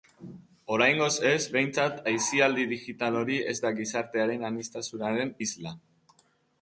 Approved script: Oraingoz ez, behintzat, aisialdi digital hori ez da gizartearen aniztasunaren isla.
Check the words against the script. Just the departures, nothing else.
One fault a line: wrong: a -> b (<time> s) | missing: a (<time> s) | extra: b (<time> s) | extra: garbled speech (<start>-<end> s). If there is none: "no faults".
no faults